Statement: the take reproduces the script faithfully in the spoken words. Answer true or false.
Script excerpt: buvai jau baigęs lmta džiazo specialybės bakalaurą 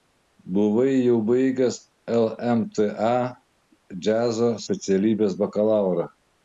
true